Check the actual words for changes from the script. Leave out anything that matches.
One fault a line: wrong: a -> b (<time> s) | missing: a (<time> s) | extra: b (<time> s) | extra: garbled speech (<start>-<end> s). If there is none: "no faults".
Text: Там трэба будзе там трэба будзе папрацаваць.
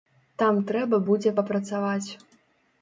missing: там трэба будзе (1.3 s)